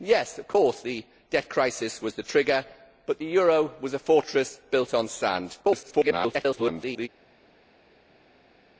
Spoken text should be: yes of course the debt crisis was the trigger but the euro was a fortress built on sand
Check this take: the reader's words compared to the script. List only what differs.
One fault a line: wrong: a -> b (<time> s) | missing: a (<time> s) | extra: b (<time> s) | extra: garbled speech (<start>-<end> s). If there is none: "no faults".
extra: garbled speech (5.6-7.1 s)